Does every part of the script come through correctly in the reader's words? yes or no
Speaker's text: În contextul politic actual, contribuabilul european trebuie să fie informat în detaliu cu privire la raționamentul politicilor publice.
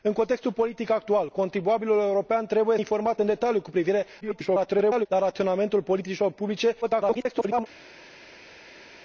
no